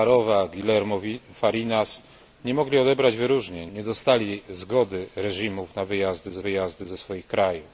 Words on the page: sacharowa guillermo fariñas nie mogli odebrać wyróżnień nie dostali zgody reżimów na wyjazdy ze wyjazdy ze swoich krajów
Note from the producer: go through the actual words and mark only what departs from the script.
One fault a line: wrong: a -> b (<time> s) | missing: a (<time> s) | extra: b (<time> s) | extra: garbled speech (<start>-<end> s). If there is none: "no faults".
no faults